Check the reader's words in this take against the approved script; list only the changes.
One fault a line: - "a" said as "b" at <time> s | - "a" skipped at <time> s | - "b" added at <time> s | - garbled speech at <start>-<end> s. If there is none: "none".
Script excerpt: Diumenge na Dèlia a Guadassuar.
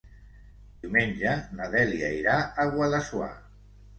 - "irà" added at 2.2 s